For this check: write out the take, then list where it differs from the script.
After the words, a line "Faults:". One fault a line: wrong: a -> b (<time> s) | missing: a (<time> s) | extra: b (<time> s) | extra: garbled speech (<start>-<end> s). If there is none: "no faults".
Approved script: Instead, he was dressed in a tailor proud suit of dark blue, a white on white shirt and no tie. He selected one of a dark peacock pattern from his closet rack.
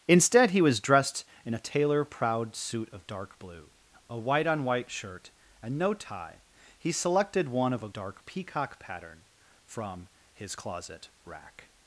Instead, he was dressed in a tailor proud suit of dark blue, a white on white shirt and no tie. He selected one of a dark peacock pattern from his closet rack.
Faults:
no faults